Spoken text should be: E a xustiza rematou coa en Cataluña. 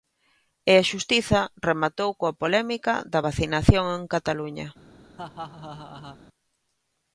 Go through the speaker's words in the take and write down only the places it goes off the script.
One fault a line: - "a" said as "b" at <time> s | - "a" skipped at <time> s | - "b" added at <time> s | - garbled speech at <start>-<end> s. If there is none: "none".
- "polémica da vacinación" added at 2.4 s